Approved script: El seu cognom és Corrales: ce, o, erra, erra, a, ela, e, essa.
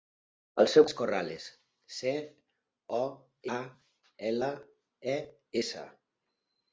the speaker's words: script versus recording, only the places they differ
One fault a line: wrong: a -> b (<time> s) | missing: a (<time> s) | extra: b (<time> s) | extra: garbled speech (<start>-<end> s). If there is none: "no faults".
missing: cognom (0.8 s)
missing: erra erra (3.0 s)